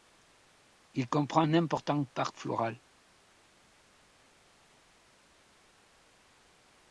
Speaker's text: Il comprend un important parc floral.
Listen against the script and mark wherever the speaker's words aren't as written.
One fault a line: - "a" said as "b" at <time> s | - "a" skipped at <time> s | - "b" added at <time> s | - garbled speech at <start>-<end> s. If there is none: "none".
none